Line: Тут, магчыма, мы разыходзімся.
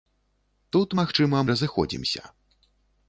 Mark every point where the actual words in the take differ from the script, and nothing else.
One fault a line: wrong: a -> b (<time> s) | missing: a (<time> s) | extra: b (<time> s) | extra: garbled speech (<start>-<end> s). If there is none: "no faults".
missing: мы (1.4 s)